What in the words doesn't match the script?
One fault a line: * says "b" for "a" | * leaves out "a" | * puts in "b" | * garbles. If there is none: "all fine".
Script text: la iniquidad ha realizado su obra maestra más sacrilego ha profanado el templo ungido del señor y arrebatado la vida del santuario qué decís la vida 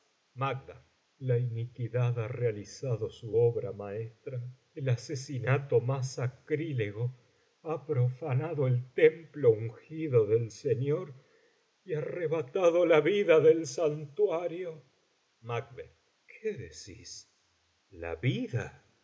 * puts in "el asesinato"